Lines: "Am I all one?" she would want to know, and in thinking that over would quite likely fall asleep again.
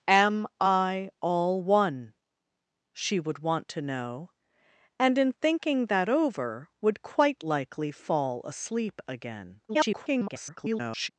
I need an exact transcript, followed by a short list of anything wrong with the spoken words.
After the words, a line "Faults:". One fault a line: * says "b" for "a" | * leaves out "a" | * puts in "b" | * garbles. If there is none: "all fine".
"Am I all one?" she would want to know, and in thinking that over would quite likely fall asleep again. [garbled]
Faults:
* garbles